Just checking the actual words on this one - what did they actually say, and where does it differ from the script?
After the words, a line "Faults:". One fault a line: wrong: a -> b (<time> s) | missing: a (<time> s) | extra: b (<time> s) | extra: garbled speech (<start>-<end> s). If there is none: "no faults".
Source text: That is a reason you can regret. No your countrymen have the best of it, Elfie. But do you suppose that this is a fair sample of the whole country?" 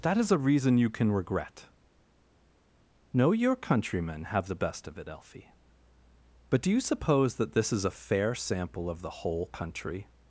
That is a reason you can regret. No your countrymen have the best of it, Elfie. But do you suppose that this is a fair sample of the whole country?"
Faults:
no faults